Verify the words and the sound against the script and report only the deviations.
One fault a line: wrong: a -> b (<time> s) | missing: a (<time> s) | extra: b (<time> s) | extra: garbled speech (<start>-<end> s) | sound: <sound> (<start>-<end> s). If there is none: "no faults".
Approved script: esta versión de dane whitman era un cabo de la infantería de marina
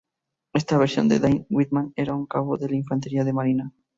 no faults